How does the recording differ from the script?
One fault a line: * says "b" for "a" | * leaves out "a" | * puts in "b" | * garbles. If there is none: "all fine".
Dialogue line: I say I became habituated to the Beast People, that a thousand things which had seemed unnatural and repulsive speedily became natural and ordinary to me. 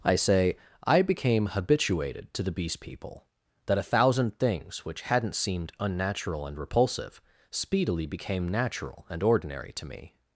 * says "hadn't" for "had"